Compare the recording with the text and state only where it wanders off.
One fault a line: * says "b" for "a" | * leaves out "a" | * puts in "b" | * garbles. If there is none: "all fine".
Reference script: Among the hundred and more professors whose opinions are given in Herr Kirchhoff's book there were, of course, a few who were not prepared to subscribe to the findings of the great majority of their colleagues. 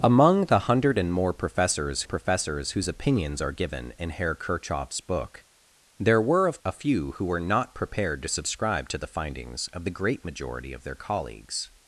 * puts in "professors"
* leaves out "course"